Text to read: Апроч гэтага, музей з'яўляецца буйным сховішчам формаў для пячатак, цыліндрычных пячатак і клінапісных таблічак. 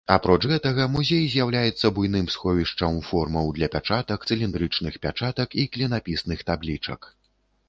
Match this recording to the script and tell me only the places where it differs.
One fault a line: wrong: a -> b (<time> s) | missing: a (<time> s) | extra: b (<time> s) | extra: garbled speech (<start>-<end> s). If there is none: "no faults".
no faults